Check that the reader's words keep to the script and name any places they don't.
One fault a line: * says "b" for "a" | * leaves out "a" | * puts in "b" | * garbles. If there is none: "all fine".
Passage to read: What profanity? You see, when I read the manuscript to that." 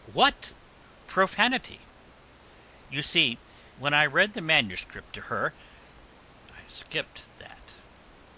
* puts in "her I skipped"